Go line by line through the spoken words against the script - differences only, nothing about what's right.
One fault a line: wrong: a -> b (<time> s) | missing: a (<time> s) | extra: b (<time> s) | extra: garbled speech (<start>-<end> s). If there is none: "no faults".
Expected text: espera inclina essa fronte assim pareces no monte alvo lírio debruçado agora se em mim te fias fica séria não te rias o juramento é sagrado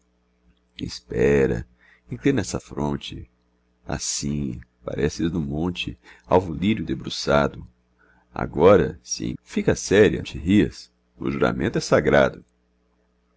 missing: mim te fias (9.3 s)
missing: não (10.2 s)